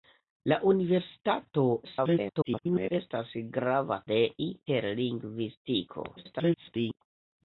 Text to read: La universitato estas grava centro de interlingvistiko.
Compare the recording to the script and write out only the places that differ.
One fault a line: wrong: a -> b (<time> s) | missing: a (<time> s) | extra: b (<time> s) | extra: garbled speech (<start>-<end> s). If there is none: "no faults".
extra: garbled speech (1.8-2.9 s)
missing: centro (4.0 s)
extra: garbled speech (6.2-7.0 s)